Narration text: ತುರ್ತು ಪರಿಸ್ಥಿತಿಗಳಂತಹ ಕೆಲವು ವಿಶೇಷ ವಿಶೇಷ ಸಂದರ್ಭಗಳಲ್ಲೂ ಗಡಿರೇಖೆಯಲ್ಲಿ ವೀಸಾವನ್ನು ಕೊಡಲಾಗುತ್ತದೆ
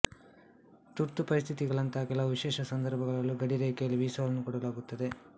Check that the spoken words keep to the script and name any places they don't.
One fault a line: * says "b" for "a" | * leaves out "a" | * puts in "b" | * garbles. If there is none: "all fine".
* leaves out "ವಿಶೇಷ"